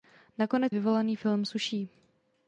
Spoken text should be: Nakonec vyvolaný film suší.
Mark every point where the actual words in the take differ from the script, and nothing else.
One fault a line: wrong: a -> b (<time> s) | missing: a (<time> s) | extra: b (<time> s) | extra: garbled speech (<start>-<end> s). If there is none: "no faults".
no faults